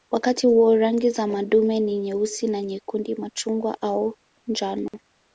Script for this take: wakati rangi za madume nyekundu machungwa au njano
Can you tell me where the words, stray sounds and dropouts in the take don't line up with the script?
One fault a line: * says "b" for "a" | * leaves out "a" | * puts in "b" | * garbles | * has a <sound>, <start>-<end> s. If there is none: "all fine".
* puts in "huo"
* puts in "ni nyeusi na"
* has a dropout, 4.9-4.9 s